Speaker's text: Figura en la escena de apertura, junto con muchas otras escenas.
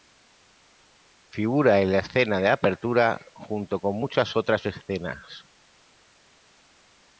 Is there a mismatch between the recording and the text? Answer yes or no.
no